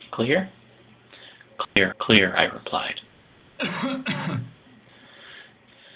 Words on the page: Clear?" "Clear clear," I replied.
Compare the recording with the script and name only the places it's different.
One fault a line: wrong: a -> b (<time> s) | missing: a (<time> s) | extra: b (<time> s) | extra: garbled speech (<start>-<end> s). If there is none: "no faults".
no faults